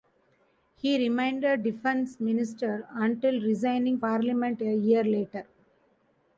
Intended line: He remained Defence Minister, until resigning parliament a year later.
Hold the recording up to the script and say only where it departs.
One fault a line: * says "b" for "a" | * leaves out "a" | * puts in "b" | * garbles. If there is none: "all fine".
all fine